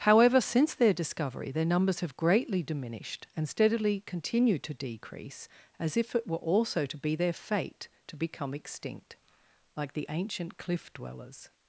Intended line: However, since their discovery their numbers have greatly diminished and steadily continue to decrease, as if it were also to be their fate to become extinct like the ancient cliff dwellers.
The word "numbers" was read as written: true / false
true